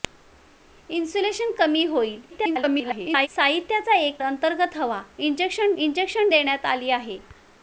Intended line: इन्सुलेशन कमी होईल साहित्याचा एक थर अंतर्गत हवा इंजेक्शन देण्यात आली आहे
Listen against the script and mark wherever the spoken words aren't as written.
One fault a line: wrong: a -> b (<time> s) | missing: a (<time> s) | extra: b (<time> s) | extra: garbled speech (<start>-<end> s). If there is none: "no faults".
extra: garbled speech (2.3-3.3 s)
missing: थर (4.2 s)
extra: इंजेक्शन (5.8 s)